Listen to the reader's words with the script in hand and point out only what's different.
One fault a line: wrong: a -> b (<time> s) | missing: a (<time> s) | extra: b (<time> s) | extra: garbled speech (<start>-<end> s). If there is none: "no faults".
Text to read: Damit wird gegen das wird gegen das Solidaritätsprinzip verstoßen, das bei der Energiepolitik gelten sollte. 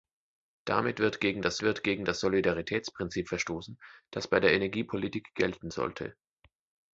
no faults